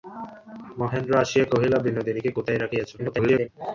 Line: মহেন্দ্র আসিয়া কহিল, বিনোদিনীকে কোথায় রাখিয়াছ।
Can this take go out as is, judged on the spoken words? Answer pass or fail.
fail